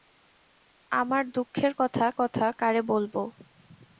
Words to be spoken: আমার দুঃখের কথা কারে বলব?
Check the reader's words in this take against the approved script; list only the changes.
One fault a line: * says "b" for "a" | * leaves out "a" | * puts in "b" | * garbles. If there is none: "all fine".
* puts in "কথা"